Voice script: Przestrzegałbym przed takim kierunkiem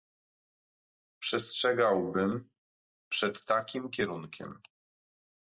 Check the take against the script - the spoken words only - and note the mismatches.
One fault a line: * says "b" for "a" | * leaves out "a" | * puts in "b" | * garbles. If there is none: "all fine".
all fine